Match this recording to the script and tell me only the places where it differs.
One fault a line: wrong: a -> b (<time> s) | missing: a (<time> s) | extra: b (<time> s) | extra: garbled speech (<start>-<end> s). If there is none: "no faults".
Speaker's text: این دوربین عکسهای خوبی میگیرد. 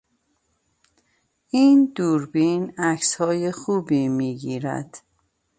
no faults